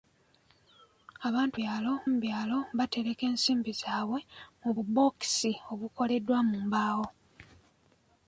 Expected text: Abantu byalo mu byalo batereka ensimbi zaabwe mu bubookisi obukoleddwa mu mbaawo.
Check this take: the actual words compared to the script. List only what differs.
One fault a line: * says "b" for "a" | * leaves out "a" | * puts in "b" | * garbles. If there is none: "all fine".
all fine